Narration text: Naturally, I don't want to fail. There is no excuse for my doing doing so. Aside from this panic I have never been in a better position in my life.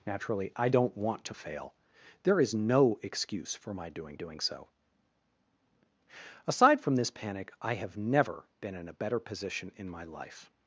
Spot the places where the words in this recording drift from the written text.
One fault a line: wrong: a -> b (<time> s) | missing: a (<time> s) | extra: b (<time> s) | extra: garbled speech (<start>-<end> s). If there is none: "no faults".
no faults